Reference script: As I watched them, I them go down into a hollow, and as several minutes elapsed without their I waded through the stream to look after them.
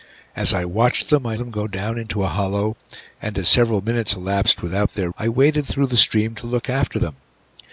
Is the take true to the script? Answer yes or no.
yes